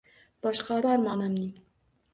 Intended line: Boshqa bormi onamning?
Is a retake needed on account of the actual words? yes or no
no